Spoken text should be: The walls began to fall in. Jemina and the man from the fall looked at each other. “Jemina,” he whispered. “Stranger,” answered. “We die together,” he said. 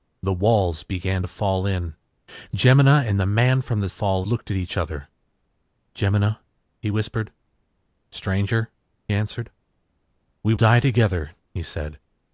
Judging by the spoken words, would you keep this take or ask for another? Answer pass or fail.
pass